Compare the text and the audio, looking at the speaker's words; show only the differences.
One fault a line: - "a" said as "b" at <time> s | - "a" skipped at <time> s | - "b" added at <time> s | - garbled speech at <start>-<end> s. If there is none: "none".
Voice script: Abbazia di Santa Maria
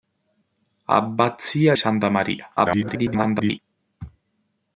- "di" skipped at 1.8 s
- garbled speech at 2.6-3.6 s